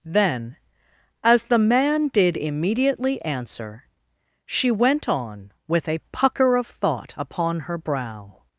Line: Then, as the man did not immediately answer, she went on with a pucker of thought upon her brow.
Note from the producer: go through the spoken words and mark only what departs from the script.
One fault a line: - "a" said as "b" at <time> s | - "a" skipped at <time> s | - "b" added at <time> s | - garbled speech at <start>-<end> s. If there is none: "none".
- "not" skipped at 2.4 s